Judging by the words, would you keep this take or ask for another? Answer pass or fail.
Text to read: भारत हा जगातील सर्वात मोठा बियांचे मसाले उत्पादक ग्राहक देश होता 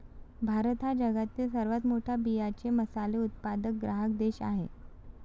fail